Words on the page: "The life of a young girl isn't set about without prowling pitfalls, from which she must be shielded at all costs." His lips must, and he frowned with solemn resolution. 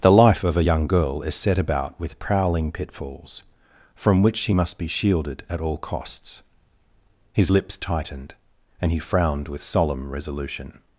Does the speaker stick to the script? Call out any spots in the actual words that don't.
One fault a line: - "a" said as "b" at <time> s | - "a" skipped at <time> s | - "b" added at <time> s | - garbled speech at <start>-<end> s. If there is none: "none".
- "isn't" said as "is" at 1.2 s
- "without" said as "with" at 2.0 s
- "must" said as "tightened" at 7.8 s